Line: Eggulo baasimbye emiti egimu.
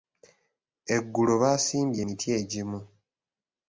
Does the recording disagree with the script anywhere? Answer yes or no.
no